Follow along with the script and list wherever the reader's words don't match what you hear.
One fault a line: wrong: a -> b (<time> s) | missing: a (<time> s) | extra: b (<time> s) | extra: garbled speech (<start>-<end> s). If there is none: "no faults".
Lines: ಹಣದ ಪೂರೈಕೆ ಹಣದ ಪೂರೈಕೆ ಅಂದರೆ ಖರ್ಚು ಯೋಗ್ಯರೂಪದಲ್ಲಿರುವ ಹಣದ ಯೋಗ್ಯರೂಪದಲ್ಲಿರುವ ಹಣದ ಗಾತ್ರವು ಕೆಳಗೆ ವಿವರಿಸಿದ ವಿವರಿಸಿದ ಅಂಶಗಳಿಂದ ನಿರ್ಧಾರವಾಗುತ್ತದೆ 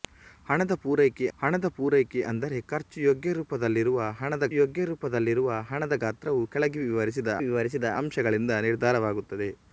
no faults